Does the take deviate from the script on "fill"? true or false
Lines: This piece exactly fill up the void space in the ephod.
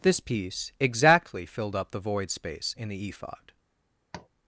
true